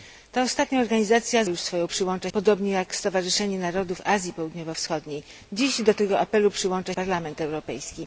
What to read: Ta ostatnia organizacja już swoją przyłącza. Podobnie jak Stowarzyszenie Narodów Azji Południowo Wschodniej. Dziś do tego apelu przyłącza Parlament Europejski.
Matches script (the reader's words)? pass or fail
pass